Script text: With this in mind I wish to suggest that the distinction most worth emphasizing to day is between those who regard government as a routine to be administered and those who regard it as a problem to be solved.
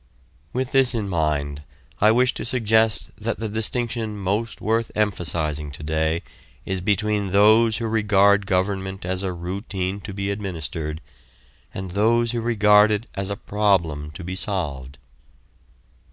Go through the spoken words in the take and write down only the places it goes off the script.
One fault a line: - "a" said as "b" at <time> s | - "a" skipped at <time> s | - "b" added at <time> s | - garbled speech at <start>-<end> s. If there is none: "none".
none